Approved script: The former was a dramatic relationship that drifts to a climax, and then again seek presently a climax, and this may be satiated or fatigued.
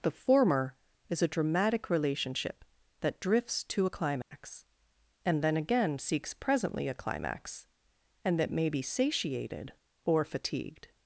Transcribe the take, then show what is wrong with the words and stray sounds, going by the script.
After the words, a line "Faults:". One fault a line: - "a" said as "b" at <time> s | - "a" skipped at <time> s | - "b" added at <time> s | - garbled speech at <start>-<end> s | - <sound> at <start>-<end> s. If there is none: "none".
The former is a dramatic relationship that drifts to a climax, and then again seeks presently a climax, and that may be satiated or fatigued.
Faults:
- "was" said as "is" at 1.1 s
- dropout at 4.2-4.3 s
- "seek" said as "seeks" at 6.0 s
- "this" said as "that" at 8.4 s